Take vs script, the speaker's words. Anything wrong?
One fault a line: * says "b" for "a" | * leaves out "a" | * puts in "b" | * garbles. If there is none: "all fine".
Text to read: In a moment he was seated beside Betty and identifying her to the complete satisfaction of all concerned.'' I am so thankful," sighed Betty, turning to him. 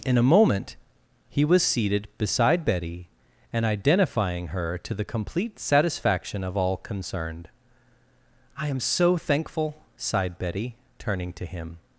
all fine